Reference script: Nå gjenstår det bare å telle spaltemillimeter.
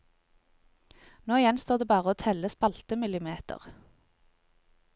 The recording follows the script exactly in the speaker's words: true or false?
true